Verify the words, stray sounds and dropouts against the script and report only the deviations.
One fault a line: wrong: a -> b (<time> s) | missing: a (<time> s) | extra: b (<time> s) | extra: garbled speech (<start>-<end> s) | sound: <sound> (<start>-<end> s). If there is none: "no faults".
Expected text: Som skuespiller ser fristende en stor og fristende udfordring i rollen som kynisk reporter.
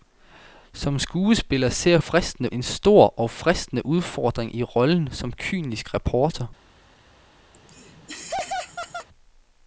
sound: laugh (7.5-9.1 s)